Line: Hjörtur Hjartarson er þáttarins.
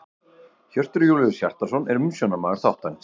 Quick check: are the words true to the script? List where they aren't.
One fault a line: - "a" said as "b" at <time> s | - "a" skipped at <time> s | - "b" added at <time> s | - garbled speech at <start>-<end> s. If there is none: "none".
- "Júlíus" added at 1.1 s
- "umsjónarmaður" added at 2.0 s